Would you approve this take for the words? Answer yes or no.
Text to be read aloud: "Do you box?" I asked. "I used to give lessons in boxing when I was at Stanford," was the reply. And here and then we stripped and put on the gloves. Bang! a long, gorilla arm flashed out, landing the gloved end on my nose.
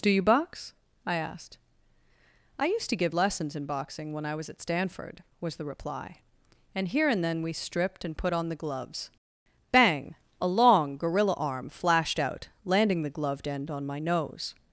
yes